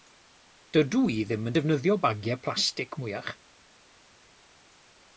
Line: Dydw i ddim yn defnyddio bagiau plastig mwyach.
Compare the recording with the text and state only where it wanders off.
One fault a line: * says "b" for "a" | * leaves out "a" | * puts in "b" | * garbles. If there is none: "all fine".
all fine